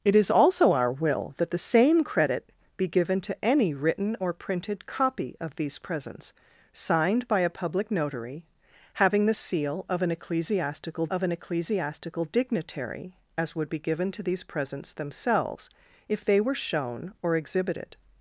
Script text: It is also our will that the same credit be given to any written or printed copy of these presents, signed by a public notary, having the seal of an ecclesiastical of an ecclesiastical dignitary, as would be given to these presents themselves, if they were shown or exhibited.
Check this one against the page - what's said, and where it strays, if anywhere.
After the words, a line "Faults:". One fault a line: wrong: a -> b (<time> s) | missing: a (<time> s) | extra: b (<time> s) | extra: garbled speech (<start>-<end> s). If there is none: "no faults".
It is also our will that the same credit be given to any written or printed copy of these presents, signed by a public notary, having the seal of an ecclesiastical of an ecclesiastical dignitary, as would be given to these presents themselves, if they were shown or exhibited.
Faults:
no faults